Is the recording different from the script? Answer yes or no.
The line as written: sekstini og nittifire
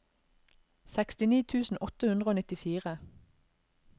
yes